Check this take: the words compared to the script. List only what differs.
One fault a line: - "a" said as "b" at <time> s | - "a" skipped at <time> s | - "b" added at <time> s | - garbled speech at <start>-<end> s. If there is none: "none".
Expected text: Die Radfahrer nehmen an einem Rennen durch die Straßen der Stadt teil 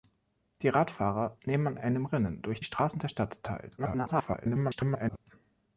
- "an" skipped at 1.8 s
- "die" skipped at 2.6 s
- garbled speech at 3.8-5.2 s